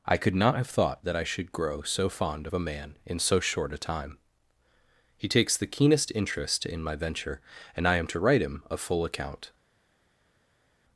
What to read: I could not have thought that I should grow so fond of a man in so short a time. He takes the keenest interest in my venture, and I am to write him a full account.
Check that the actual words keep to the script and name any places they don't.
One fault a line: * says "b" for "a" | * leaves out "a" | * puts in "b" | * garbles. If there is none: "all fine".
all fine